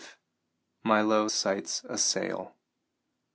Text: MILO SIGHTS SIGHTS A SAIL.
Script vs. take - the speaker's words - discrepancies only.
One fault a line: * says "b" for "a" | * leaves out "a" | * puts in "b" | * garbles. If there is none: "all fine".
* leaves out "SIGHTS"